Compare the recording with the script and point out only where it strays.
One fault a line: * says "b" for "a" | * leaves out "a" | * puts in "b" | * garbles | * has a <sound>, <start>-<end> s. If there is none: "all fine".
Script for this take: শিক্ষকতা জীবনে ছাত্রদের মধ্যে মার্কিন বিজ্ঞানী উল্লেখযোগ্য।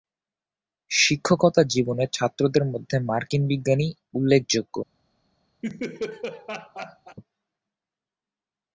* has a laugh, 5.6-7.2 s